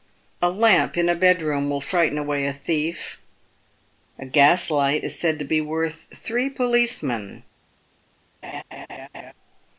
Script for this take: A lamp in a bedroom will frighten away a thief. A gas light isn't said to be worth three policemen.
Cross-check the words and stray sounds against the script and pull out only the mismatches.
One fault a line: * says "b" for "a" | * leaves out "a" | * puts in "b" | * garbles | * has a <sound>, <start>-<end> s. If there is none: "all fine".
* says "is" for "isn't"
* has a laugh, 8.4-9.3 s